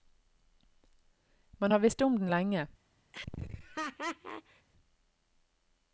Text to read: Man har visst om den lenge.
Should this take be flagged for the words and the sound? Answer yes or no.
yes